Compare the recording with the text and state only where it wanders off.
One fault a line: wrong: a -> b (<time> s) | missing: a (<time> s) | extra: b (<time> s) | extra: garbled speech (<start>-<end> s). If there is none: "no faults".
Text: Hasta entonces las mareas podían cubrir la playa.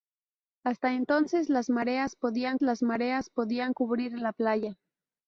extra: las mareas podían (2.6 s)